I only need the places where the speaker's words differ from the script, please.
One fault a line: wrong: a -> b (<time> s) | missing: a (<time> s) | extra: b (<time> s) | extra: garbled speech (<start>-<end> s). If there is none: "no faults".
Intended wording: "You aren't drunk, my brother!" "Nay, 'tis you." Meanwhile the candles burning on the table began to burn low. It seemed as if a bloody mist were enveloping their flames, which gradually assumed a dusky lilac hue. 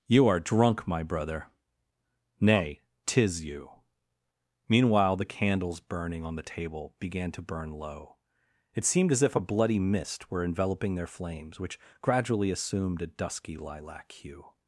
wrong: aren't -> are (0.3 s)